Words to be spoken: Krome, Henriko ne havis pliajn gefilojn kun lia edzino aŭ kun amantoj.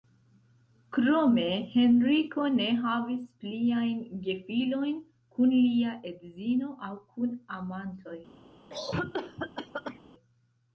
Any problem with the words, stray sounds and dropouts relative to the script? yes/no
yes